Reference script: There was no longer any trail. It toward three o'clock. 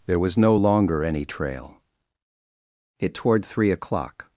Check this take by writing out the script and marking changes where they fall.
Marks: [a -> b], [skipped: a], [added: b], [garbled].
There was no longer any trail. It toward three o'clock.